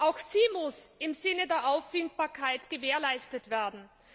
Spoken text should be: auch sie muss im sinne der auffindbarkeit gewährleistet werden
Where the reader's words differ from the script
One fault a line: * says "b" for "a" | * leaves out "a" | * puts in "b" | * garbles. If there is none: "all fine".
all fine